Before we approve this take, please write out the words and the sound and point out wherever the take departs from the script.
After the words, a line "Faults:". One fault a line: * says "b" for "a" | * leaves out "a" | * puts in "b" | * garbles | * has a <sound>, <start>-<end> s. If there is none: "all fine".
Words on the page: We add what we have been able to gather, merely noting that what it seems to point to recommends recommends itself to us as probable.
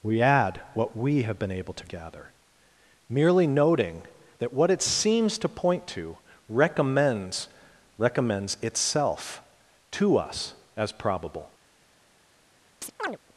We add what we have been able to gather, merely noting that what it seems to point to recommends recommends itself to us as probable.
Faults:
* has a chirp, 12.8-13.2 s